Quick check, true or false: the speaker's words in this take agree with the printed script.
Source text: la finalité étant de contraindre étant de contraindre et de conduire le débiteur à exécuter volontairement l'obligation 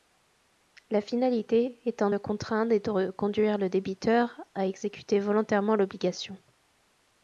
false